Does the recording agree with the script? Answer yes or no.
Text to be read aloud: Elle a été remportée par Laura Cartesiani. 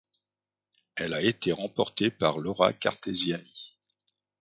yes